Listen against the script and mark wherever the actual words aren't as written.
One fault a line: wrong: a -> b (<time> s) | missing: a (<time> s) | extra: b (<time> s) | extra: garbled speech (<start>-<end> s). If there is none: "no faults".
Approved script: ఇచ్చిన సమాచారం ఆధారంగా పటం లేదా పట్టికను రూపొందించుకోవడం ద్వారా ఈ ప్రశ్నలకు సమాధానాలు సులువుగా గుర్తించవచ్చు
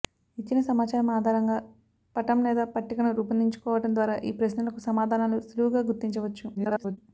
extra: garbled speech (6.6-7.0 s)